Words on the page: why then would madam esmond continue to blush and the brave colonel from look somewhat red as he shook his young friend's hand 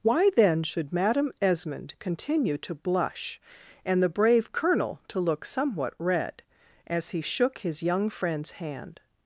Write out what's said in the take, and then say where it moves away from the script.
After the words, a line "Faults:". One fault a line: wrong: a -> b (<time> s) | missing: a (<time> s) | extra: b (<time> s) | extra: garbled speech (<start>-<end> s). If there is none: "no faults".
why then should madam esmond continue to blush and the brave colonel to look somewhat red as he shook his young friend's hand
Faults:
wrong: would -> should (0.6 s)
wrong: from -> to (5.1 s)